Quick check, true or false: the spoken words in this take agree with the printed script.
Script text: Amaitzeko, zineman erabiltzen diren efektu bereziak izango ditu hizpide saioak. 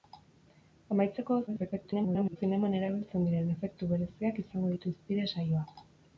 false